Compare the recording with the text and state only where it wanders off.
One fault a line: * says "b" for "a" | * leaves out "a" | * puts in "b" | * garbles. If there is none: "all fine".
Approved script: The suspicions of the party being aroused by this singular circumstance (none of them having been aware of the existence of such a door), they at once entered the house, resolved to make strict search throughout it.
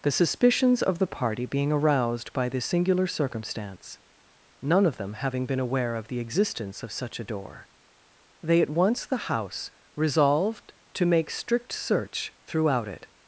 * leaves out "entered"